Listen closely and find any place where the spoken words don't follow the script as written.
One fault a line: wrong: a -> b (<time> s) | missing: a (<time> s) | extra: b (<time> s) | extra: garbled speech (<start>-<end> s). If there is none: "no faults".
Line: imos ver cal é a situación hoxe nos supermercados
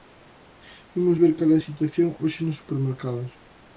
no faults